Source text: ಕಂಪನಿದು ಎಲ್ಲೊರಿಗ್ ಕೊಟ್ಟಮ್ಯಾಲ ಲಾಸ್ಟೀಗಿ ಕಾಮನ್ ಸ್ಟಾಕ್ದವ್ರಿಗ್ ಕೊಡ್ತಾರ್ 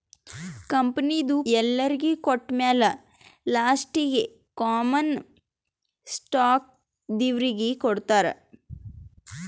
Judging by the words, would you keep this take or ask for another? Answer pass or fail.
pass